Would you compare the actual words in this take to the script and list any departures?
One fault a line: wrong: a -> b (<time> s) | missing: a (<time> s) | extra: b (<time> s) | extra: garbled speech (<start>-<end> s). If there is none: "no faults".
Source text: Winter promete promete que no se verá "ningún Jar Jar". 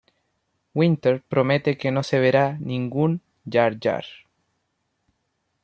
missing: promete (1.8 s)